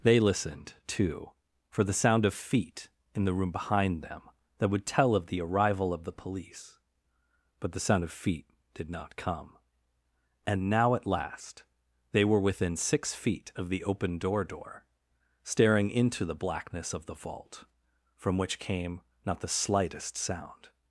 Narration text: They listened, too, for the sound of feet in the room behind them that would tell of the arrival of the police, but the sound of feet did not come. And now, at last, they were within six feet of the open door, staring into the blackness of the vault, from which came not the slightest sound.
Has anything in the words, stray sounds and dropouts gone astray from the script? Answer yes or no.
yes